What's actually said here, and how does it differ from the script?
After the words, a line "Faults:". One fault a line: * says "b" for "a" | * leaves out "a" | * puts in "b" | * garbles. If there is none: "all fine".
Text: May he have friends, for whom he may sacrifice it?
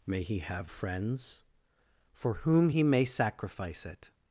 May he have friends, for whom he may sacrifice it?
Faults:
all fine